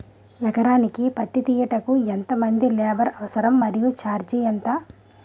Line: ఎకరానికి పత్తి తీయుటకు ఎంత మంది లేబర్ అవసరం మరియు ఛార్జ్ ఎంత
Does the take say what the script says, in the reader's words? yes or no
yes